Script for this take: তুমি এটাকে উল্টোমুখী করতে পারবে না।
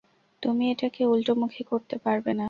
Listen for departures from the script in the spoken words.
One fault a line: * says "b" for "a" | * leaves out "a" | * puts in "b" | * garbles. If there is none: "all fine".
all fine